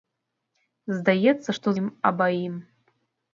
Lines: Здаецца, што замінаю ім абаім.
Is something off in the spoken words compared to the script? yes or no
yes